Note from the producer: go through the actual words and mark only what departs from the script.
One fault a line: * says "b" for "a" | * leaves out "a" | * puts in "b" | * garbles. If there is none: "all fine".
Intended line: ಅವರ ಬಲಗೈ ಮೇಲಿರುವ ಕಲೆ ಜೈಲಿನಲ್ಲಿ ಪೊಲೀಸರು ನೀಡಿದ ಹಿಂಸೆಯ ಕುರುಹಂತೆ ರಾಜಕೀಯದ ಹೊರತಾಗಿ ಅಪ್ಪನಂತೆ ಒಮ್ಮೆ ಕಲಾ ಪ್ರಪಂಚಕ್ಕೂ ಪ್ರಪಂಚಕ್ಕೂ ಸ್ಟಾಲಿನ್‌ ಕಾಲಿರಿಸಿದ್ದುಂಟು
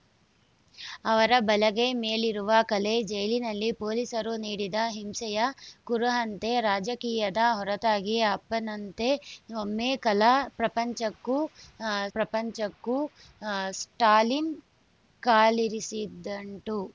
all fine